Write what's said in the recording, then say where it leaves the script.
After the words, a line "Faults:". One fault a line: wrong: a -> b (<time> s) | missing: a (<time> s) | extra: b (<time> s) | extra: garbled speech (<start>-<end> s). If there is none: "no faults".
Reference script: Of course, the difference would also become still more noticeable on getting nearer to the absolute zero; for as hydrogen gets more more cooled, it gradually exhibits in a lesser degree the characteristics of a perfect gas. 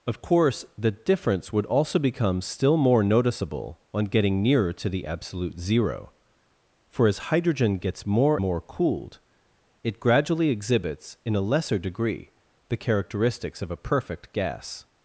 Of course, the difference would also become still more noticeable on getting nearer to the absolute zero; for as hydrogen gets more more cooled, it gradually exhibits in a lesser degree the characteristics of a perfect gas.
Faults:
no faults